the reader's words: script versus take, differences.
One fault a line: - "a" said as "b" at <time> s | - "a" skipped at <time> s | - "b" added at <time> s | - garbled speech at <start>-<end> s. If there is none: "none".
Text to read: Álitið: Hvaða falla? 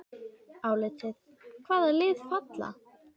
- "lið" added at 2.0 s